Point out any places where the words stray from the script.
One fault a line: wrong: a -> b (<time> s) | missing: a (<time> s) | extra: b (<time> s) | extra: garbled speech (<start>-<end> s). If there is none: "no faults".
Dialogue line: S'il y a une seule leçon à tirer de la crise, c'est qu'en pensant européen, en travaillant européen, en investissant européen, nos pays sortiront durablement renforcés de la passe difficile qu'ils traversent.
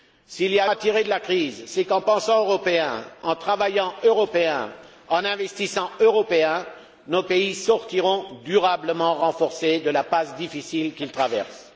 missing: une seule leçon (0.7 s)